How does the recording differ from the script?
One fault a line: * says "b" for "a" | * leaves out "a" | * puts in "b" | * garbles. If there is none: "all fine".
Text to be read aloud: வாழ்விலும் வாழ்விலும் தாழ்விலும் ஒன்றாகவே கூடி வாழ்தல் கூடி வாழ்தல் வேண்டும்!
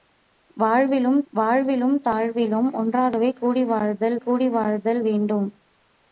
all fine